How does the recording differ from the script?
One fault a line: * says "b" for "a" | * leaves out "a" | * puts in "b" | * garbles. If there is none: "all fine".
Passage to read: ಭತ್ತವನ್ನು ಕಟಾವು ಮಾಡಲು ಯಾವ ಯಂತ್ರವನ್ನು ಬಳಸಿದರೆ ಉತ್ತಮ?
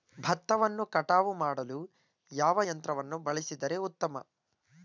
all fine